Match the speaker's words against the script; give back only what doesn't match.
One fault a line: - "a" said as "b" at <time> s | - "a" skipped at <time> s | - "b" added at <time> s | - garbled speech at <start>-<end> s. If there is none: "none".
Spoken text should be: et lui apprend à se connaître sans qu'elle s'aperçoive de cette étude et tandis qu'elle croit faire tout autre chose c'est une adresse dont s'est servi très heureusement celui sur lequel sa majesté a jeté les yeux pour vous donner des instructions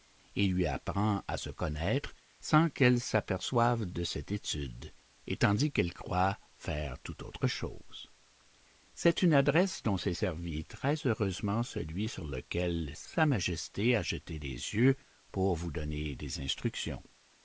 none